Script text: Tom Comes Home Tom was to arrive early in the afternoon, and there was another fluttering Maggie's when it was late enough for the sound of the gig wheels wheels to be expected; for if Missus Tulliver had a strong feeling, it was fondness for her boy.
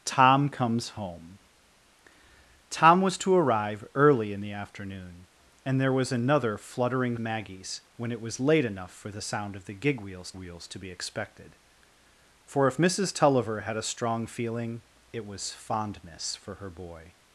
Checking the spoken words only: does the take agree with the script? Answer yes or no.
yes